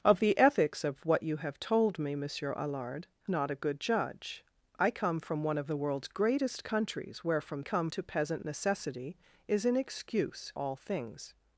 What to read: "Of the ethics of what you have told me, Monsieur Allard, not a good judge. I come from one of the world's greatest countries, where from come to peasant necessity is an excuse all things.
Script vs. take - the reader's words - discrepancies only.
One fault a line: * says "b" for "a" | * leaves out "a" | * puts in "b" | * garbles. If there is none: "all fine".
all fine